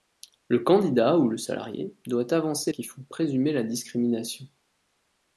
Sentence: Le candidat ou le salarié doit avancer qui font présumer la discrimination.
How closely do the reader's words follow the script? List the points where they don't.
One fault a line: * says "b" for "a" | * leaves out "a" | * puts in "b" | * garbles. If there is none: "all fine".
all fine